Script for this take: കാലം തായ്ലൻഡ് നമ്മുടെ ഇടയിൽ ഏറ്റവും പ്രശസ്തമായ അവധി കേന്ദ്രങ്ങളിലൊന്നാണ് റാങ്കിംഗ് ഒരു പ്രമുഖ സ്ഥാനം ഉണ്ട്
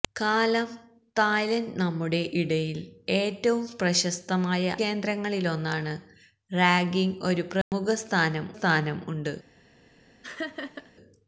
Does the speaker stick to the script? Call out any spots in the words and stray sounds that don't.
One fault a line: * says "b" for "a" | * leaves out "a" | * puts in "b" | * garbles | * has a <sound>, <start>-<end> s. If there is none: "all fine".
* leaves out "അവധി"
* has a dropout, 7.6-7.7 s
* puts in "സ്ഥാനം"
* has a laugh, 10.2-10.9 s